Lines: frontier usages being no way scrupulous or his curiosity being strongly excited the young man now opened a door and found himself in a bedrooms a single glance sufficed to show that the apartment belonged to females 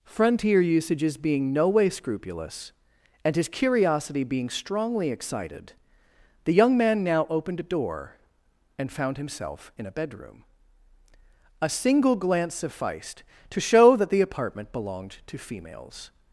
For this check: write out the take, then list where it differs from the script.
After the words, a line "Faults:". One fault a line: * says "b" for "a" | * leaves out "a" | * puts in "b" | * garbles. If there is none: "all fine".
frontier usages being no way scrupulous and his curiosity being strongly excited the young man now opened a door and found himself in a bedroom a single glance sufficed to show that the apartment belonged to females
Faults:
* says "and" for "or"
* says "bedroom" for "bedrooms"